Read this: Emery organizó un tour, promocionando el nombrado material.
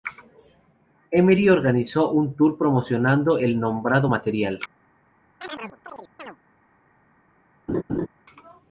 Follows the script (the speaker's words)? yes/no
yes